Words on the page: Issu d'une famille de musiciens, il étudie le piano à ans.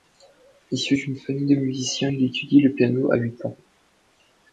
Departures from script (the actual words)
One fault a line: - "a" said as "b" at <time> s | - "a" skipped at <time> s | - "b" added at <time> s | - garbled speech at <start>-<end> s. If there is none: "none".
- "huit" added at 3.1 s